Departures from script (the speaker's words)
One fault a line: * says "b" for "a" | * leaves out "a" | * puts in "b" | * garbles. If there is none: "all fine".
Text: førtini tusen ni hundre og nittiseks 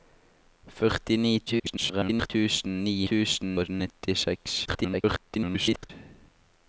* garbles
* says "tusen" for "hundre"
* garbles